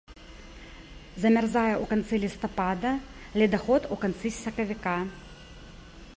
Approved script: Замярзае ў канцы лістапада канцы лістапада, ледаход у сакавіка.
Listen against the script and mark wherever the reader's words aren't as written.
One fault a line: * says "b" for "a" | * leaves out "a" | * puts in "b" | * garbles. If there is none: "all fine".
* leaves out "канцы лістапада"
* puts in "канцы"